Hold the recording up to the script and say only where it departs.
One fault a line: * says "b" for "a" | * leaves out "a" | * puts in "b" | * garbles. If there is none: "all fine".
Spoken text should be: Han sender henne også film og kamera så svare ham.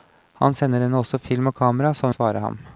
all fine